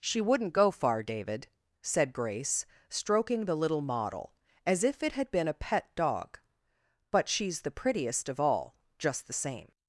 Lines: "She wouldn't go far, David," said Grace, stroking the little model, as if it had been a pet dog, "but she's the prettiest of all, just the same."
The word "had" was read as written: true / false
true